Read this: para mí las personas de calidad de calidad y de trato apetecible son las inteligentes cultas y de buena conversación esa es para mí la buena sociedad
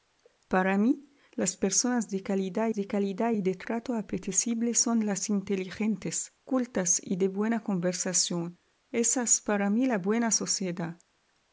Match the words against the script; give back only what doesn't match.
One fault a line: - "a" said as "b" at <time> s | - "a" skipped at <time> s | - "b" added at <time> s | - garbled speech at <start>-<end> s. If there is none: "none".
none